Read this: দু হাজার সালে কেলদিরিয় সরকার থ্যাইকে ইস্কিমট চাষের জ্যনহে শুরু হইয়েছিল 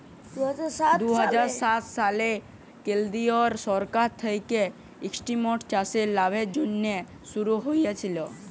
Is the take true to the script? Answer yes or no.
no